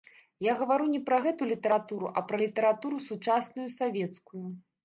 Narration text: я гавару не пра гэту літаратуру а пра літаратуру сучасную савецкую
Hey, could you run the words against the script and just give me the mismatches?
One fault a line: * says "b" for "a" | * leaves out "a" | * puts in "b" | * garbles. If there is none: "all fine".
all fine